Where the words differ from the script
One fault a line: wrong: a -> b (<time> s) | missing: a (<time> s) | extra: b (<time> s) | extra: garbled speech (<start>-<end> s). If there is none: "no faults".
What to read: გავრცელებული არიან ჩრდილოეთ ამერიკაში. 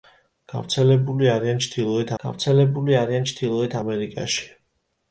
extra: გავრცელებული არიან ჩრდილოეთ (2.2 s)